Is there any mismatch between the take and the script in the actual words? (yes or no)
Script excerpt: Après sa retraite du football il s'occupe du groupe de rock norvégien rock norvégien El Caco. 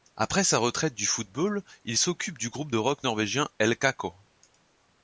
yes